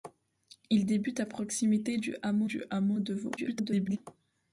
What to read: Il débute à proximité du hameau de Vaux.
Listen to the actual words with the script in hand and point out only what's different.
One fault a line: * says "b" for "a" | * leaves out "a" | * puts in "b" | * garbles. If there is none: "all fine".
* puts in "du hameau"
* garbles